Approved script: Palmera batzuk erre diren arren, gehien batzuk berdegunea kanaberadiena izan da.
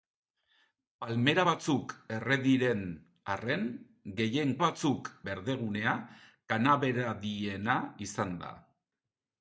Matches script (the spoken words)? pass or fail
pass